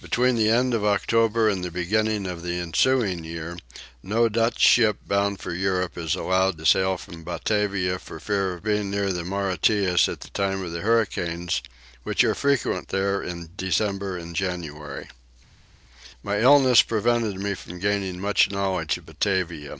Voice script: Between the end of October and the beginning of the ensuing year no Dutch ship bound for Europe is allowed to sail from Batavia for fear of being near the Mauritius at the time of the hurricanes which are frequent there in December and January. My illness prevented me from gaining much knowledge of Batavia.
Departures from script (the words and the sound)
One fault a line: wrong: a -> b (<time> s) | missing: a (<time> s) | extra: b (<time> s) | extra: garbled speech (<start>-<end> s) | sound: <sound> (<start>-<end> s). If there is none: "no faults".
no faults